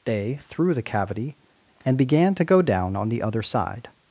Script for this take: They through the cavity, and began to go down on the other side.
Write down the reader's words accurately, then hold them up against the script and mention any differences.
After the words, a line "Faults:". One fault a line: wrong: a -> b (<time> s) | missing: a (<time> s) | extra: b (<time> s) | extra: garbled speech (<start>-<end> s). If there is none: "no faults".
They through the cavity, and began to go down on the other side.
Faults:
no faults